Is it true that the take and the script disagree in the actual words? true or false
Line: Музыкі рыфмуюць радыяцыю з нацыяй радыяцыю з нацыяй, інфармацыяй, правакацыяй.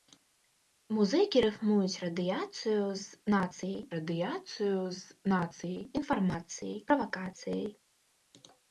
false